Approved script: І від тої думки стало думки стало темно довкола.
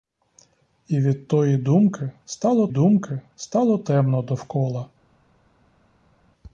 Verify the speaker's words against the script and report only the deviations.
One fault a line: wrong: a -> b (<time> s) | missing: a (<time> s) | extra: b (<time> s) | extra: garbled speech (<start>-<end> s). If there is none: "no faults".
no faults